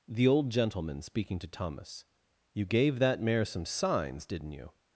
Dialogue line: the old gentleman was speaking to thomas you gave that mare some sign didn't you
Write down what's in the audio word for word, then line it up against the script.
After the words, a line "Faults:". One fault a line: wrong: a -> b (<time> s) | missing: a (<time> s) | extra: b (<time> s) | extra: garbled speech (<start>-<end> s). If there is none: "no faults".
the old gentleman speaking to thomas you gave that mare some signs didn't you
Faults:
missing: was (1.0 s)
wrong: sign -> signs (3.6 s)